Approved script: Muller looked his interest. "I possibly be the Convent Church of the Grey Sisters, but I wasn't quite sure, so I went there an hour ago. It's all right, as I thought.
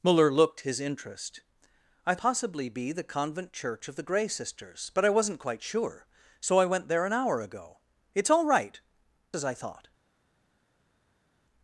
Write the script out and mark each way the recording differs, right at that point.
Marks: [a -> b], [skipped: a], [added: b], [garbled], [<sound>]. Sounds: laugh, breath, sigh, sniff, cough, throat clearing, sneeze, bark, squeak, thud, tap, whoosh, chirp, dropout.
Muller looked his interest. "I possibly be the Convent Church of the Grey Sisters, but I wasn't quite sure, so I went there an hour ago. It's all right, as I thought.